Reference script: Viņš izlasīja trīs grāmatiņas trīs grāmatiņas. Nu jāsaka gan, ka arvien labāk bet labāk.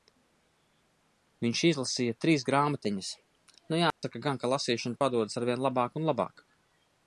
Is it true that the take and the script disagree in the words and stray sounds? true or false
true